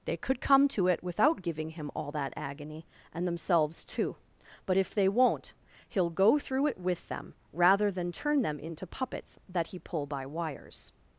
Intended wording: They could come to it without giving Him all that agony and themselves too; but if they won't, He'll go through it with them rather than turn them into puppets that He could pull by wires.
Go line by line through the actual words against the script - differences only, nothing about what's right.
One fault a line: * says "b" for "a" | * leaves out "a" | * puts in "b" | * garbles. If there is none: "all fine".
* leaves out "could"